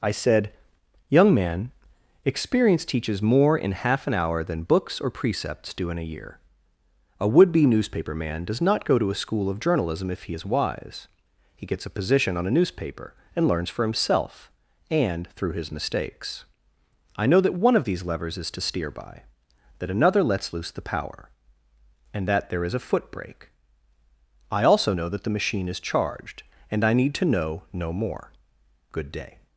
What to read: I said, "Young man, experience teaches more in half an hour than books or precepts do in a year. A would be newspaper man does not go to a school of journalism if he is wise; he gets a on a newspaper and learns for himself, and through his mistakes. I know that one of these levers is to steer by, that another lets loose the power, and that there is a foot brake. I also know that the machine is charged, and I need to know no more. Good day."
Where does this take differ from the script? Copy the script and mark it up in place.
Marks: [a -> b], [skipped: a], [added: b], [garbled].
I said, "Young man, experience teaches more in half an hour than books or precepts do in a year. A would be newspaper man does not go to a school of journalism if he is wise; he gets a [added: position] on a newspaper and learns for himself, and through his mistakes. I know that one of these levers is to steer by, that another lets loose the power, and that there is a foot brake. I also know that the machine is charged, and I need to know no more. Good day."